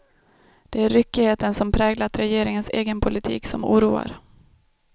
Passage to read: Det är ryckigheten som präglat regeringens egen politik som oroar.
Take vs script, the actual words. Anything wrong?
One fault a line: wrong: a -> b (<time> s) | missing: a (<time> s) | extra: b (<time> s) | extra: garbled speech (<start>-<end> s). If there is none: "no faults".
no faults